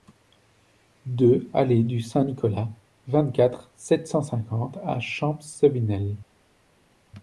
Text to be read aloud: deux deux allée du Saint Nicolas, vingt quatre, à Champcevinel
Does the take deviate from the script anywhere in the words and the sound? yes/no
yes